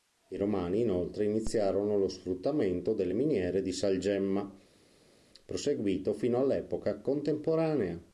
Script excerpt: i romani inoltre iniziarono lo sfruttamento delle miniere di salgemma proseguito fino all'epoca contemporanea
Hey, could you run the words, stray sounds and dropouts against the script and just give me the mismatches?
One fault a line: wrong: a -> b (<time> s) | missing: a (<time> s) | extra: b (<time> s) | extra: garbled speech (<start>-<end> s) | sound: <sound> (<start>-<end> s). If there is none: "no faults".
no faults